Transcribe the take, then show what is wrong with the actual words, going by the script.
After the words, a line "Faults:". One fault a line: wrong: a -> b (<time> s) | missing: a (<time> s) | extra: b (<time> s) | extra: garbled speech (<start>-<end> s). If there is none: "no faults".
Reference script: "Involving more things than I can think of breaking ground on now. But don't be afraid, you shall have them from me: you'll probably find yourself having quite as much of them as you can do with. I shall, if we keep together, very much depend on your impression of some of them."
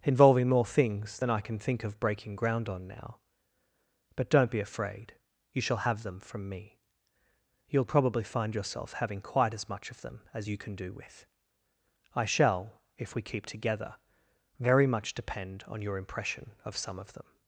"Involving more things than I can think of breaking ground on now. But don't be afraid, you shall have them from me: you'll probably find yourself having quite as much of them as you can do with. I shall, if we keep together, very much depend on your impression of some of them."
Faults:
no faults